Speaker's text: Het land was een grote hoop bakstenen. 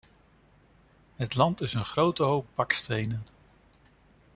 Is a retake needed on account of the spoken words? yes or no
yes